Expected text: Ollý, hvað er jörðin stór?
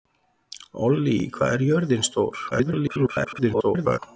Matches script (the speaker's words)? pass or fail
fail